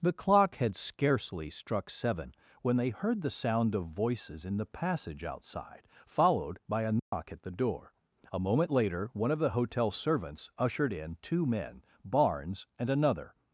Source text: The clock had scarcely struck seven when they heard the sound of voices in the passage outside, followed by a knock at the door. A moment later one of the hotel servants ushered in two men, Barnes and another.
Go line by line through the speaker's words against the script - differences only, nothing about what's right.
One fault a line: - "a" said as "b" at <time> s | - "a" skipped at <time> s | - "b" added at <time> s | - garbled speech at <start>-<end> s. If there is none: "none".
none